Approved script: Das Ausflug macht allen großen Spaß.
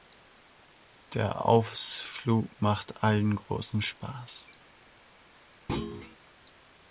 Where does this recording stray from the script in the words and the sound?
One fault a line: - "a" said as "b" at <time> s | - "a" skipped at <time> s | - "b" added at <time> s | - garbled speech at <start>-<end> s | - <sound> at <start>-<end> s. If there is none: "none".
- "Das" said as "Der" at 1.1 s
- thud at 5.7-6.2 s